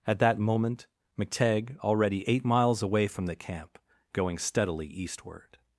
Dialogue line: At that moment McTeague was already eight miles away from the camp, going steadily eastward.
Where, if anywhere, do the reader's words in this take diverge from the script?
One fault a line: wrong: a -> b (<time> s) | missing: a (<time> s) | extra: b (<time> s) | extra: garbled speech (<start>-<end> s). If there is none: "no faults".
missing: was (1.8 s)